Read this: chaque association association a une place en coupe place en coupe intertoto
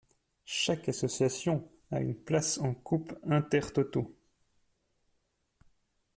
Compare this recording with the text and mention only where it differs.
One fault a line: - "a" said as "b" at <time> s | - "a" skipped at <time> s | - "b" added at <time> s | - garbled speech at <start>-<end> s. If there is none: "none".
- "association" skipped at 1.7 s
- "place en coupe" skipped at 3.1 s